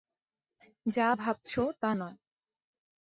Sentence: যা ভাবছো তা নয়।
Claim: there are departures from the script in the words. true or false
false